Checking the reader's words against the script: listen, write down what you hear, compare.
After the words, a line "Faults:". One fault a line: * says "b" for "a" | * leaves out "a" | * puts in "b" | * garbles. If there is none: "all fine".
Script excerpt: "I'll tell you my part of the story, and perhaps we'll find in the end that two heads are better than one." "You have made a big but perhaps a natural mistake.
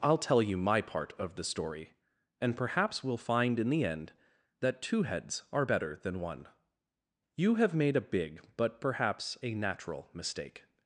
"I'll tell you my part of the story, and perhaps we'll find in the end that two heads are better than one." "You have made a big but perhaps a natural mistake.
Faults:
all fine